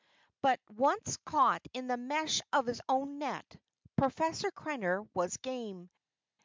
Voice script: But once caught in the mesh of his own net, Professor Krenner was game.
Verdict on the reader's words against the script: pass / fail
pass